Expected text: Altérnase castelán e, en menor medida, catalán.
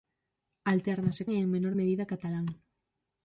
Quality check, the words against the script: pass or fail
fail